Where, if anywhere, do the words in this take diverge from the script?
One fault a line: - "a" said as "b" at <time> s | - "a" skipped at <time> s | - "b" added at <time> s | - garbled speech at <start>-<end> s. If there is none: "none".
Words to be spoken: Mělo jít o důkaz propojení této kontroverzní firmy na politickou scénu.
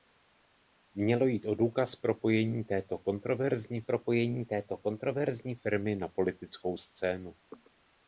- "propojení této kontroverzní" added at 3.8 s